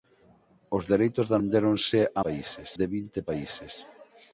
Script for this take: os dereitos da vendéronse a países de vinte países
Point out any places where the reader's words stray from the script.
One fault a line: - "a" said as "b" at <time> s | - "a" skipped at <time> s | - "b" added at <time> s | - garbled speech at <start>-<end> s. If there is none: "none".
none